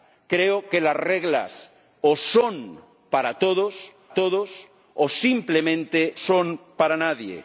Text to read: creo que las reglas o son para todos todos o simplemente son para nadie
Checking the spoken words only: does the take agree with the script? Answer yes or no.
yes